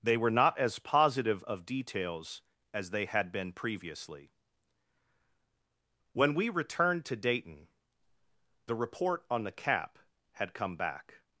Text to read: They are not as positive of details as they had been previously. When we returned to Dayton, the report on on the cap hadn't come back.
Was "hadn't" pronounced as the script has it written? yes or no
no